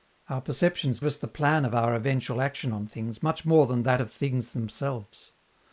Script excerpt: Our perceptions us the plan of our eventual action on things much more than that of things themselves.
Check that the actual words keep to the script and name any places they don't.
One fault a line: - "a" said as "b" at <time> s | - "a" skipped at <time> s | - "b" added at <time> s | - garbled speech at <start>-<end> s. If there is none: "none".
none